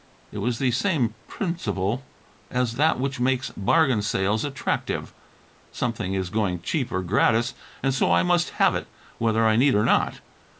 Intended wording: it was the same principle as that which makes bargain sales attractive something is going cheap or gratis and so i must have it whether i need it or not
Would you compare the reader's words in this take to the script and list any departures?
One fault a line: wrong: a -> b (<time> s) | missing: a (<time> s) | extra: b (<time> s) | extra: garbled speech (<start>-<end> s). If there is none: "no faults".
missing: it (9.8 s)